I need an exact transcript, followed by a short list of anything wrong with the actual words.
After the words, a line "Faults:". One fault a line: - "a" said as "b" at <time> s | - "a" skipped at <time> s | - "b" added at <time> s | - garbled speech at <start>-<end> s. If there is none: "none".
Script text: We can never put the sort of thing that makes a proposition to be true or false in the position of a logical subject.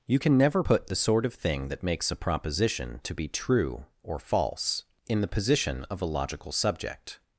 You can never put the sort of thing that makes a proposition to be true or false in the position of a logical subject.
Faults:
- "We" said as "You" at 0.1 s